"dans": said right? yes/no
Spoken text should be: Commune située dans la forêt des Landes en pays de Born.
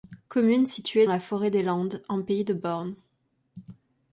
no